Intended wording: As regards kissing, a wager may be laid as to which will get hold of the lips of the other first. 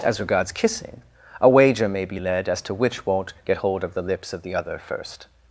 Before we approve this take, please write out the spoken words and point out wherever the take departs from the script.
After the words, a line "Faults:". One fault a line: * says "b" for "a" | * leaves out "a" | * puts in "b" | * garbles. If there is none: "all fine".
As regards kissing, a wager may be led as to which won't get hold of the lips of the other first.
Faults:
* says "led" for "laid"
* says "won't" for "will"